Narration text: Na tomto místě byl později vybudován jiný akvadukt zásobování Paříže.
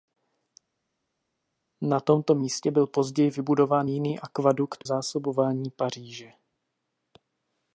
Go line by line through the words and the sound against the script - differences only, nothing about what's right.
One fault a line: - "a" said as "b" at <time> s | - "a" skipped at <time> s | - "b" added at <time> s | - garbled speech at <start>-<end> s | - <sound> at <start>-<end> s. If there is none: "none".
none